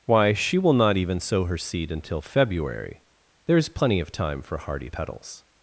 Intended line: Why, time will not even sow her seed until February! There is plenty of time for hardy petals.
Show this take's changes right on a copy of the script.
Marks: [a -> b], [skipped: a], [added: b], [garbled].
Why, [time -> she] will not even sow her seed until February! There is plenty of time for hardy petals.